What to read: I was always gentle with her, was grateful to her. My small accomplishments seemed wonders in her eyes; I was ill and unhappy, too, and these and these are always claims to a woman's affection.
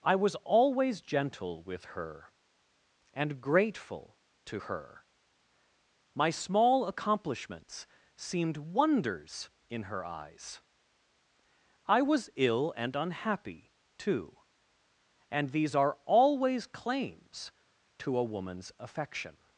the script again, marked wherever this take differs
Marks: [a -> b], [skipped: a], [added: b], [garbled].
I was always gentle with her, [was -> and] grateful to her. My small accomplishments seemed wonders in her eyes; I was ill and unhappy, too, and these [skipped: and these] are always claims to a woman's affection.